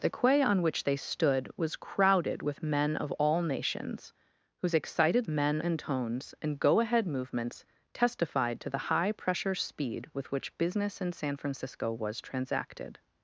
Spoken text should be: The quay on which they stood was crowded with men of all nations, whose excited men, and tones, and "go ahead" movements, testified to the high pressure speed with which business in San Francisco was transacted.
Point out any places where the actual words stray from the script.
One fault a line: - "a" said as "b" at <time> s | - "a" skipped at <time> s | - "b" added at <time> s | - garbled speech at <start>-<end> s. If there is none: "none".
none